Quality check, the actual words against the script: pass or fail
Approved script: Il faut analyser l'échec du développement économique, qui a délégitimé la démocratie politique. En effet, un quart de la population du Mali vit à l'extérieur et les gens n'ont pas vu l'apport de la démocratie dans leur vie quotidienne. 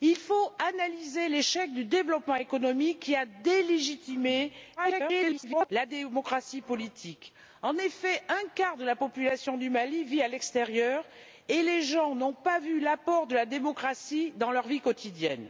fail